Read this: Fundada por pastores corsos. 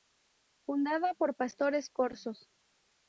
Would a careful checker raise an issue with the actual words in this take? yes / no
no